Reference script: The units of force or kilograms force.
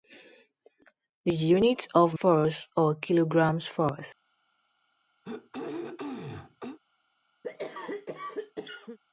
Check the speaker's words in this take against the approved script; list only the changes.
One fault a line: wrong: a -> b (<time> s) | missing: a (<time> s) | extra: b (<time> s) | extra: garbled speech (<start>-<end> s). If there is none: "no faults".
no faults